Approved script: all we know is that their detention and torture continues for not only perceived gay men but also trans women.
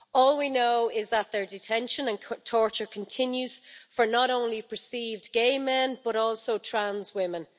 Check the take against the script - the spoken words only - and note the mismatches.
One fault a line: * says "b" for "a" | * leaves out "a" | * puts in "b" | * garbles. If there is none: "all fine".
all fine